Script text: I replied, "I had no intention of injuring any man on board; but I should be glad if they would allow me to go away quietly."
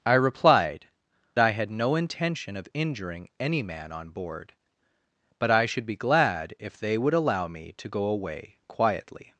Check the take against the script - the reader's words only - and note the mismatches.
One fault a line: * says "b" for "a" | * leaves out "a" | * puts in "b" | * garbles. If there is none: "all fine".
all fine